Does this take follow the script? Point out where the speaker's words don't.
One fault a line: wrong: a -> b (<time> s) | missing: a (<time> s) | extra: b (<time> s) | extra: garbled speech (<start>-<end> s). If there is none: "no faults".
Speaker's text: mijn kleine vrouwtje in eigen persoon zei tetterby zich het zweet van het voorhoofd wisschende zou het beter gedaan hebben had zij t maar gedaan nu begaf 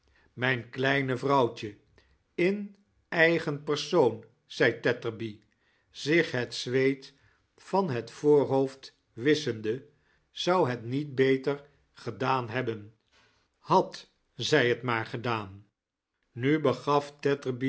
extra: niet (10.8 s)